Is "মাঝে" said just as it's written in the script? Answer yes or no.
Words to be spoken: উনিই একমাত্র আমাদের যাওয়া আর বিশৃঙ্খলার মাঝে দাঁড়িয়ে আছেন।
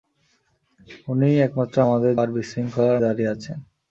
no